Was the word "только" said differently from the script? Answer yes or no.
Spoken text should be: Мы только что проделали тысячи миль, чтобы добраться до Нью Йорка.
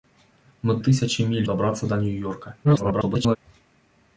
yes